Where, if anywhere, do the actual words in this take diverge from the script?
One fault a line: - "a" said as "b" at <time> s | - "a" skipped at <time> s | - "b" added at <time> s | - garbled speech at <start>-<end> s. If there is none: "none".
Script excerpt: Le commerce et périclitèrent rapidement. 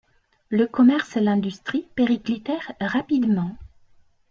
- "l'industrie" added at 1.2 s